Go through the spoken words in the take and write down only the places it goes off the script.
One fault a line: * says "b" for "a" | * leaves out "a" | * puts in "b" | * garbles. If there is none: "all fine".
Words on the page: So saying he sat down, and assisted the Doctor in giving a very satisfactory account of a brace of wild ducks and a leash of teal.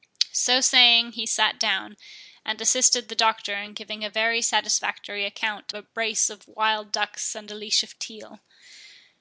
* leaves out "of"